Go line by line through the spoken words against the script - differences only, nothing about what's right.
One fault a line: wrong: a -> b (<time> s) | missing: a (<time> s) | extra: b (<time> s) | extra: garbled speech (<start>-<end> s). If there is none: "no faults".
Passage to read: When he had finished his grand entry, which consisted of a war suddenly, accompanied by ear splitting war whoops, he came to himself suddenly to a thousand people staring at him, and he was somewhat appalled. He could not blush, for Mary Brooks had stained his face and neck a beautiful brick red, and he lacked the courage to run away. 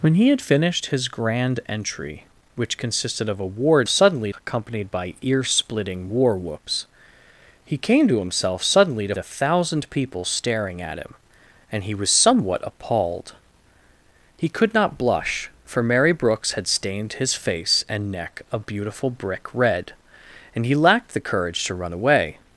no faults